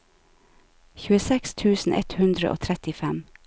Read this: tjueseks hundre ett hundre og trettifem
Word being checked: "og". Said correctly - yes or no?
yes